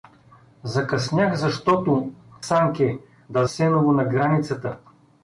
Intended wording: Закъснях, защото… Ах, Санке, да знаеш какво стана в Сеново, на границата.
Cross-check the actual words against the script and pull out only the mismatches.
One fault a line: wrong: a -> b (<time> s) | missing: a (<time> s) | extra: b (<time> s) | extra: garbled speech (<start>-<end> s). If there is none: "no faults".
missing: Ах (2.1 s)
missing: знаеш какво стана (3.4 s)